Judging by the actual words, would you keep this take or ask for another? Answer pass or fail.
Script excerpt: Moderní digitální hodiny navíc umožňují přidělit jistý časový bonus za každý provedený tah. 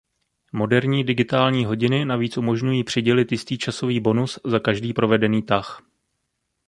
pass